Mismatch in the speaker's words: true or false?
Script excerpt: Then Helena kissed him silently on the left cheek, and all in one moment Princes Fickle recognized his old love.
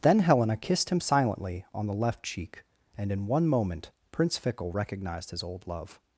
true